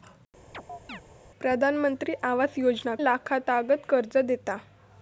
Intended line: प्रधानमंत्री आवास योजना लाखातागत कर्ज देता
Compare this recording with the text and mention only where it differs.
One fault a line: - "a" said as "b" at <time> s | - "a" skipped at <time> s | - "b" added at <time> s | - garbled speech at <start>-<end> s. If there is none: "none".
none